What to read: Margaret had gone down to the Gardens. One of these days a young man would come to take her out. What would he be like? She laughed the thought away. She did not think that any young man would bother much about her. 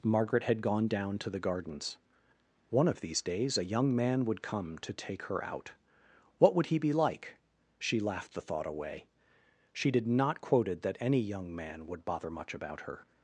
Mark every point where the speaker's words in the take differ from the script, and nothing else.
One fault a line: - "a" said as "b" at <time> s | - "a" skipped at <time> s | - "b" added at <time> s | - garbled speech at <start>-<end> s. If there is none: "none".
- "think" said as "quoted" at 10.4 s